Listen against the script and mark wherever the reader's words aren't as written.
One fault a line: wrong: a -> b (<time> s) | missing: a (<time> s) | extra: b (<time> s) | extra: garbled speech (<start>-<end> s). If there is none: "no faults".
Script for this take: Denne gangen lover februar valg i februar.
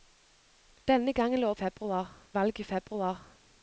no faults